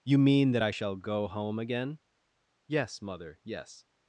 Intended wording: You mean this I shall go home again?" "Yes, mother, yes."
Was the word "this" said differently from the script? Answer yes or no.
yes